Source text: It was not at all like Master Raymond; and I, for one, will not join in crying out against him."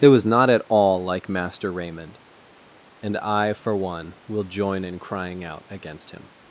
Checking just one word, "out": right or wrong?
right